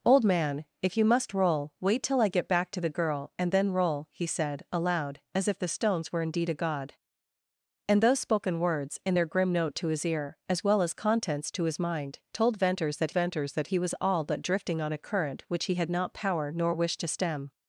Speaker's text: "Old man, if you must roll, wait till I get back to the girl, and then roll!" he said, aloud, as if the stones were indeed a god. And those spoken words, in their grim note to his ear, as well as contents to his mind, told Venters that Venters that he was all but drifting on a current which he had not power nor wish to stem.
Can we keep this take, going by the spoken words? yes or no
yes